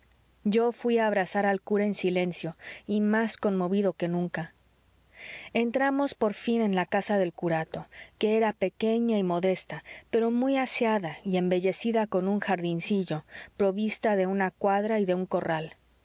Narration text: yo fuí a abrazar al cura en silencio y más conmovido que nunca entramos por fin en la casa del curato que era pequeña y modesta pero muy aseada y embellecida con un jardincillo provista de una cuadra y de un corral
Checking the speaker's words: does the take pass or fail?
pass